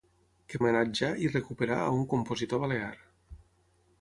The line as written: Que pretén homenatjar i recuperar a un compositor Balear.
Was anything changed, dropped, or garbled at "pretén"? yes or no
yes